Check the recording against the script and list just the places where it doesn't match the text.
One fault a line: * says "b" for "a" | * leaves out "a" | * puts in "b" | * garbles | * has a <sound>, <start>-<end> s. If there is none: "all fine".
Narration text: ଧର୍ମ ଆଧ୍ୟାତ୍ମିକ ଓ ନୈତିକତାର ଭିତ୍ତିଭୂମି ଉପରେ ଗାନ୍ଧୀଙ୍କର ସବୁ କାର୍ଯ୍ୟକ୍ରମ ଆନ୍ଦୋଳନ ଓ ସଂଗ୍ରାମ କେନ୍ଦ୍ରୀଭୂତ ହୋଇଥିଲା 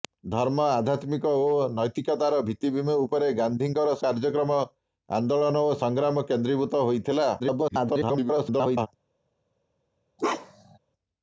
* leaves out "ସବୁ"
* garbles
* has a bark, 10.2-10.8 s